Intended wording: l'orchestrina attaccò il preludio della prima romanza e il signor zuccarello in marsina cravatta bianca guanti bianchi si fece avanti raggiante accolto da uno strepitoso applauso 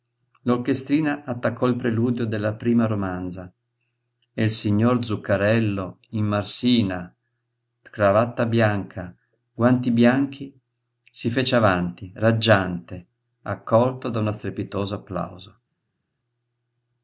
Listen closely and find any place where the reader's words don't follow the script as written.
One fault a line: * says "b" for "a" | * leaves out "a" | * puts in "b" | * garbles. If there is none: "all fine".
all fine